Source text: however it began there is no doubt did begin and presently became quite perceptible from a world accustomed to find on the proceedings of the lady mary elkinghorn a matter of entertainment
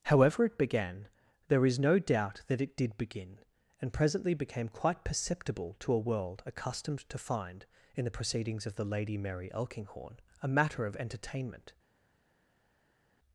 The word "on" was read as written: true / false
false